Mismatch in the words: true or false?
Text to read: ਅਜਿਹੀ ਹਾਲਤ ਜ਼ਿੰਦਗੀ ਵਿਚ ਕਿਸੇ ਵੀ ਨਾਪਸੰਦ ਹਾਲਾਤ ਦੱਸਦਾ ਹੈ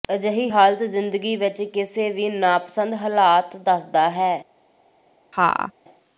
false